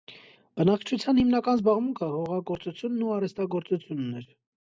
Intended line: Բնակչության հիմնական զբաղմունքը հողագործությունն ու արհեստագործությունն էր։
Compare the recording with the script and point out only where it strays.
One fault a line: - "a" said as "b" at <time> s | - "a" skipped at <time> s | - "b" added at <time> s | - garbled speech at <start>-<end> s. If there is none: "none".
none